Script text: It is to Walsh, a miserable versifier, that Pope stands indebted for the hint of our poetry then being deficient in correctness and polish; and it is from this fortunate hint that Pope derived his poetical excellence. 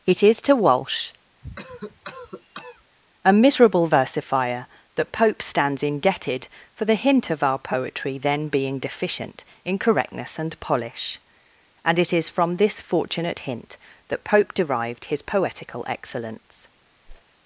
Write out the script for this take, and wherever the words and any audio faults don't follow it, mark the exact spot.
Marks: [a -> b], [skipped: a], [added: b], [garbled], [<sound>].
It is to Walsh, [cough] a miserable versifier, that Pope stands indebted for the hint of our poetry then being deficient in correctness and polish; and it is from this fortunate hint that Pope derived his poetical excellence. [whoosh]